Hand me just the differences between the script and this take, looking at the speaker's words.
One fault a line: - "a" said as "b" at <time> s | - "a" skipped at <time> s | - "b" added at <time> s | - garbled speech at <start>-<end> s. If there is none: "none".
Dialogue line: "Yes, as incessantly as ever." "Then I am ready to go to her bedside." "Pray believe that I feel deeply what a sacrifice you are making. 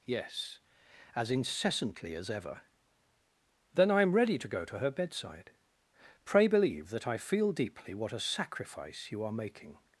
none